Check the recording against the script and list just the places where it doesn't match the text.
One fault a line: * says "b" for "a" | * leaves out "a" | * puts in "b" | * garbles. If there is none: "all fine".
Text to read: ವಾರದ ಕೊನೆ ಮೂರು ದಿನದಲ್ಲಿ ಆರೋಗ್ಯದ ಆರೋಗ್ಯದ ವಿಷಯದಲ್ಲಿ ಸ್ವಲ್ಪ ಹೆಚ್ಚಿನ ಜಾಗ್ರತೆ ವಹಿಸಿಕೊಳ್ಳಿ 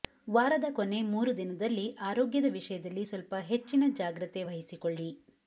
* leaves out "ಆರೋಗ್ಯದ"